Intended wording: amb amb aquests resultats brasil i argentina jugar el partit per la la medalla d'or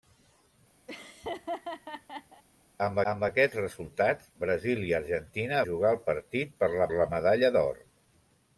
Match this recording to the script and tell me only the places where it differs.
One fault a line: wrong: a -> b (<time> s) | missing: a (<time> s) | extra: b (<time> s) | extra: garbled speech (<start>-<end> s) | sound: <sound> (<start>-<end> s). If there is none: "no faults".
sound: laugh (0.9-2.4 s)